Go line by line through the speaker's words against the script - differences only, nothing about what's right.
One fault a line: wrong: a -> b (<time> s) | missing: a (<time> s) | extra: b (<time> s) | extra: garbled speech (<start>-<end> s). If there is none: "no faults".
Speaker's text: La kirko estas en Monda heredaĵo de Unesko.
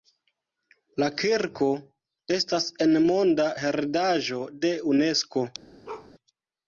no faults